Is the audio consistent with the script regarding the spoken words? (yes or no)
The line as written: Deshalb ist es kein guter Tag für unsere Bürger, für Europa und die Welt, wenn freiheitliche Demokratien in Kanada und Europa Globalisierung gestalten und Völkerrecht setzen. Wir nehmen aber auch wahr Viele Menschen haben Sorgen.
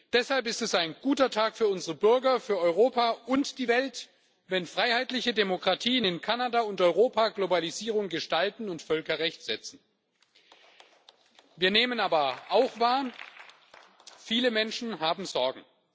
no